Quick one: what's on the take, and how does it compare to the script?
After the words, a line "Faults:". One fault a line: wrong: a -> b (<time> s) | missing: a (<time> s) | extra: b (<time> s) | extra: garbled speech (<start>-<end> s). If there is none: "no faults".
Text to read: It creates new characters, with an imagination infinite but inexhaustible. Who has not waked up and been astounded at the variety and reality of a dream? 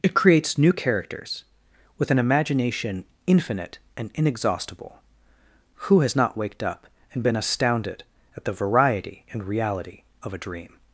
It creates new characters, with an imagination infinite and inexhaustible. Who has not waked up and been astounded at the variety and reality of a dream?
Faults:
wrong: but -> and (4.0 s)